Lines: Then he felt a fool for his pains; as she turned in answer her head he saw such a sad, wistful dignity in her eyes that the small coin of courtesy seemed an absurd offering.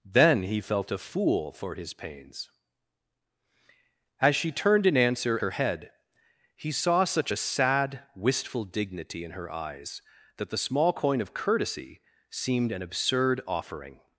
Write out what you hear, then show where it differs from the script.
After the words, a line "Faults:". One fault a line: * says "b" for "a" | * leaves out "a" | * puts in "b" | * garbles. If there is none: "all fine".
Then he felt a fool for his pains; as she turned in answer her head he saw such a sad, wistful dignity in her eyes that the small coin of courtesy seemed an absurd offering.
Faults:
all fine